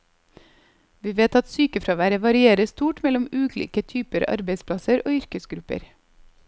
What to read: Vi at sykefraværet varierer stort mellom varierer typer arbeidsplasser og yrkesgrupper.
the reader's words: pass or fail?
fail